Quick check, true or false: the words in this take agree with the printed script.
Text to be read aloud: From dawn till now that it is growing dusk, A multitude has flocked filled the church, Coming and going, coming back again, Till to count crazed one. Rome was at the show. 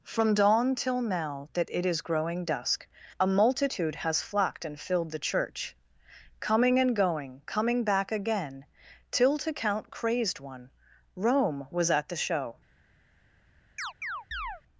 false